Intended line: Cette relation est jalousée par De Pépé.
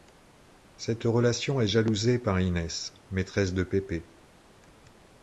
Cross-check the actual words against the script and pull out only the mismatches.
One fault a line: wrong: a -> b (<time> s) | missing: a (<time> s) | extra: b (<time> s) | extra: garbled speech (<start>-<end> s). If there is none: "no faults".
extra: Inès maîtresse (2.4 s)